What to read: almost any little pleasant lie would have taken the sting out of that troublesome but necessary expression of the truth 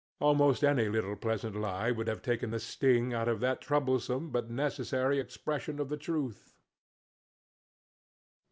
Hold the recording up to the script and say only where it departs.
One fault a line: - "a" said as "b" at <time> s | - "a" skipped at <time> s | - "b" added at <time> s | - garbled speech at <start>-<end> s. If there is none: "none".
none